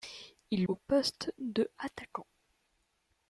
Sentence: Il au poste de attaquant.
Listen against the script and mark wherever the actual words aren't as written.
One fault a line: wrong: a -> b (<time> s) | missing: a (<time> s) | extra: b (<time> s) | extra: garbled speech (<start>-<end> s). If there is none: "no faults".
no faults